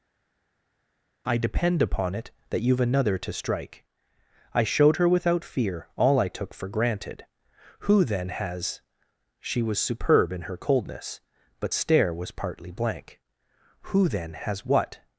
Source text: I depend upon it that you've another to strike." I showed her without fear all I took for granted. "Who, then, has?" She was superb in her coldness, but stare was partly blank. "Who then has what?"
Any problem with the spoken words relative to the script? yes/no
no